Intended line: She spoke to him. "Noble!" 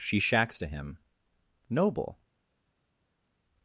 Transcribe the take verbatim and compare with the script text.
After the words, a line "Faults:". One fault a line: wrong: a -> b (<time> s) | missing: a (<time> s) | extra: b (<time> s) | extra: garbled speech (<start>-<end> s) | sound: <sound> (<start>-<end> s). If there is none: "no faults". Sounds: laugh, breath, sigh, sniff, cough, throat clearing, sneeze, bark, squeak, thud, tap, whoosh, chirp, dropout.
She shacks to him. "Noble!"
Faults:
wrong: spoke -> shacks (0.2 s)